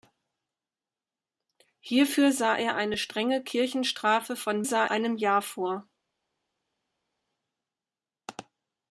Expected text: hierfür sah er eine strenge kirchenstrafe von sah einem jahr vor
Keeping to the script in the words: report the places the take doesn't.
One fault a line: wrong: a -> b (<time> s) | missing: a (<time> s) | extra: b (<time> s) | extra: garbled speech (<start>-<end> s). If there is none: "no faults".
no faults